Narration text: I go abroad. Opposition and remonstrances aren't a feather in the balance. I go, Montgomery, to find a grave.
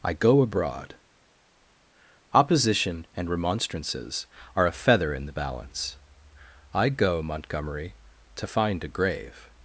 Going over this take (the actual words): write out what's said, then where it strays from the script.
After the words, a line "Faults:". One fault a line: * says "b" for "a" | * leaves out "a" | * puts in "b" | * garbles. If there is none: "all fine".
I go abroad. Opposition and remonstrances are a feather in the balance. I go, Montgomery, to find a grave.
Faults:
* says "are" for "aren't"